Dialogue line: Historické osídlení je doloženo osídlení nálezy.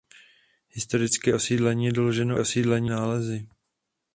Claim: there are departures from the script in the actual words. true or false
false